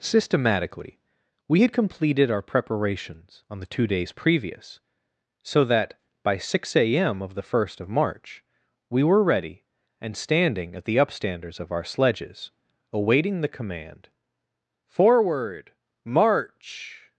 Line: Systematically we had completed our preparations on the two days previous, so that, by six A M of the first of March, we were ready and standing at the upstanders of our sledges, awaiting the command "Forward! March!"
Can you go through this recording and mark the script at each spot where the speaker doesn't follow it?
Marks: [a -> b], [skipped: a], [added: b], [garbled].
Systematically we had completed our preparations on the two days previous, so that, by six A M of the first of March, we were ready and standing at the upstanders of our sledges, awaiting the command "Forward! March!"